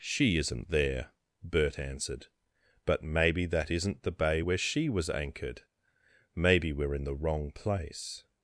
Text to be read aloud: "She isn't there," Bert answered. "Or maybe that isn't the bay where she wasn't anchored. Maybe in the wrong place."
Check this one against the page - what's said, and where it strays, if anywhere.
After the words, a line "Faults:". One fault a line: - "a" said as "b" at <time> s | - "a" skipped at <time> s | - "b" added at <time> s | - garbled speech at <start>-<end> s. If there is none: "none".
"She isn't there," Bert answered. "But maybe that isn't the bay where she was anchored. Maybe we're in the wrong place."
Faults:
- "Or" said as "But" at 2.9 s
- "wasn't" said as "was" at 4.9 s
- "we're" added at 6.7 s